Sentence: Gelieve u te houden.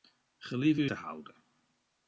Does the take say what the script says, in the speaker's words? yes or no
yes